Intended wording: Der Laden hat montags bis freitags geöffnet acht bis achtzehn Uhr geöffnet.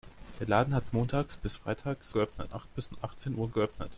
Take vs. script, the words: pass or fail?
pass